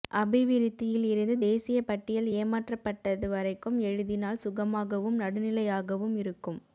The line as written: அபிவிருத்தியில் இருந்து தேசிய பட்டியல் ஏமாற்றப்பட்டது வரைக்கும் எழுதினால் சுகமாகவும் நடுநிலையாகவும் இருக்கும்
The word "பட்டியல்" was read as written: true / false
true